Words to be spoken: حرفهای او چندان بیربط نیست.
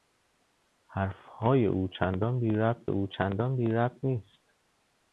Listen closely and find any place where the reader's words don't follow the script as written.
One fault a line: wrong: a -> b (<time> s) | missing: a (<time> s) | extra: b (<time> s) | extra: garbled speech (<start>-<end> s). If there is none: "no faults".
extra: او چندان بیربط (2.9 s)